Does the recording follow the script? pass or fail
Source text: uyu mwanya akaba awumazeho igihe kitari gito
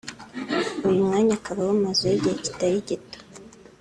pass